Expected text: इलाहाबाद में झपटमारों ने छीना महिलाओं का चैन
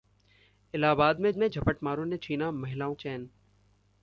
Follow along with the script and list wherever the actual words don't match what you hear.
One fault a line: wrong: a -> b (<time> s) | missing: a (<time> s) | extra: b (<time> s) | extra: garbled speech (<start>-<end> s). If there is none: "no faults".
extra: में (1.4 s)
missing: का (2.9 s)